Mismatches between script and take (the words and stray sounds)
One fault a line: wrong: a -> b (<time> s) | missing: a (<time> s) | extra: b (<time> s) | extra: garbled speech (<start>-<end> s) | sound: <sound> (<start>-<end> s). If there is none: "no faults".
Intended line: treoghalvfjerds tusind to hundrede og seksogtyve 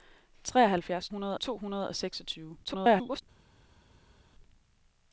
wrong: tusind -> hundrede (1.1 s)
extra: garbled speech (2.6-3.2 s)